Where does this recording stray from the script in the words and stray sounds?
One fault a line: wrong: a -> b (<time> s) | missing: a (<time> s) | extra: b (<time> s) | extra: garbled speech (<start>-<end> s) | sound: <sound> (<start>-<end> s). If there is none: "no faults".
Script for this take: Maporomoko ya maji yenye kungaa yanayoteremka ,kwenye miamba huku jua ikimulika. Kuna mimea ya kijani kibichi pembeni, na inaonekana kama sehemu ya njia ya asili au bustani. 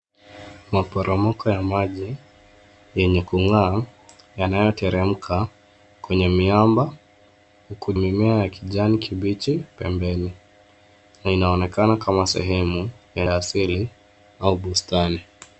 missing: jua ikimulika Kuna (7.9 s)
missing: njia (13.3 s)